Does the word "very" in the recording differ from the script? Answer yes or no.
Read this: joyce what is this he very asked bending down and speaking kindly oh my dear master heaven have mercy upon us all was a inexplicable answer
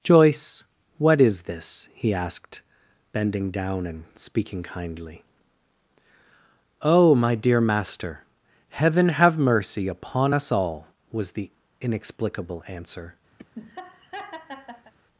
yes